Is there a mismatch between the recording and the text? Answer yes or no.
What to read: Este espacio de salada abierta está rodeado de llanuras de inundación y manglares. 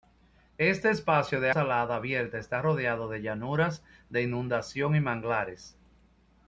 no